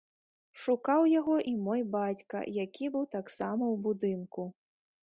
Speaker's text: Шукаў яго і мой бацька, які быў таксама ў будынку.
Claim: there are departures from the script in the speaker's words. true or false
false